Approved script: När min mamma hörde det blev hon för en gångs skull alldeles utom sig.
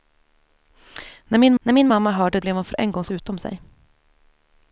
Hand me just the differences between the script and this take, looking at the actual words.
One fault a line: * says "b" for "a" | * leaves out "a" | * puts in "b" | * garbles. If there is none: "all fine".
* puts in "när min"
* leaves out "det"
* leaves out "skull alldeles"